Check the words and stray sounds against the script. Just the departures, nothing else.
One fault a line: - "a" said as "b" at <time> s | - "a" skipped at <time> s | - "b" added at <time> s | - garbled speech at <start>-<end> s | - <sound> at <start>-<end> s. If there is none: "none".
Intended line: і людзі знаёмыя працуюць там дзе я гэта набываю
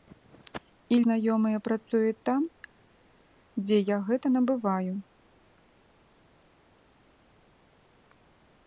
- "людзі" skipped at 1.0 s